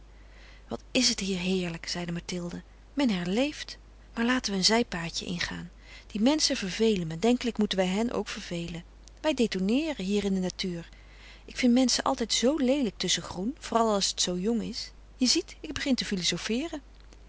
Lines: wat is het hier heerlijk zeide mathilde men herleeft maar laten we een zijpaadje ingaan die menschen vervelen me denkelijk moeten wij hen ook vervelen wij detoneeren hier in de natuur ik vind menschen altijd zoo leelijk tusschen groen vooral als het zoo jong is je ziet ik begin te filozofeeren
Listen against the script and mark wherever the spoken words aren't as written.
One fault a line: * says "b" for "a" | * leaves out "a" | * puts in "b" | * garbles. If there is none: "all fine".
all fine